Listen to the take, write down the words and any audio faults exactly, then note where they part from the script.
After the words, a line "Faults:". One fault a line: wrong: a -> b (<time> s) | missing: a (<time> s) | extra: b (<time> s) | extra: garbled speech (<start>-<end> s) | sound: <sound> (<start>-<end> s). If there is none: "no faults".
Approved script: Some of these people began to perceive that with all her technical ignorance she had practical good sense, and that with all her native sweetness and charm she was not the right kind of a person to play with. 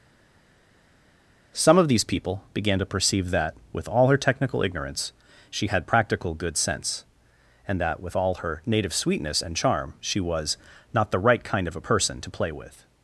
Some of these people began to perceive that with all her technical ignorance she had practical good sense, and that with all her native sweetness and charm she was not the right kind of a person to play with.
Faults:
no faults